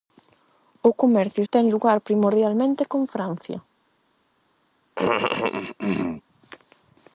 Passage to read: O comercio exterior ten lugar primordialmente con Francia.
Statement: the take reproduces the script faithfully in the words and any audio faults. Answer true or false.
false